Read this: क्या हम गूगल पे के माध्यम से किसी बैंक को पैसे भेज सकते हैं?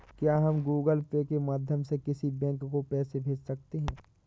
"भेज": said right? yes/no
yes